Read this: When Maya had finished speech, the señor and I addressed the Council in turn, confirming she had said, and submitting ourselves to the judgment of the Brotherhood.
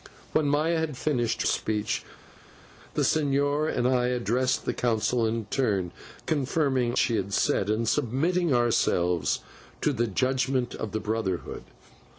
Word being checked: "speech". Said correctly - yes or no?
yes